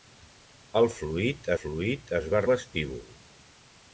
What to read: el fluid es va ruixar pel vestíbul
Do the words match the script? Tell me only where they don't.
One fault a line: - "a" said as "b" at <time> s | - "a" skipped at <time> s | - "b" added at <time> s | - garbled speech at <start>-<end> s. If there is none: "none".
- "fluid" added at 1.6 s
- "ruixar pel" skipped at 2.4 s